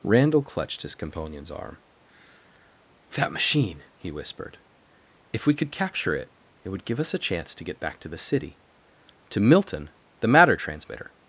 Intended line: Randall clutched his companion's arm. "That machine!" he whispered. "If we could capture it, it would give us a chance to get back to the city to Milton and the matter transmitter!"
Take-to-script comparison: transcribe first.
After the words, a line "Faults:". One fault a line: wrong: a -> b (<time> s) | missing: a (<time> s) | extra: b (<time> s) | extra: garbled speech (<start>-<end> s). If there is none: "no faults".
Randall clutched his companion's arm. "That machine!" he whispered. "If we could capture it, it would give us a chance to get back to the city to Milton the matter transmitter!"
Faults:
missing: and (9.9 s)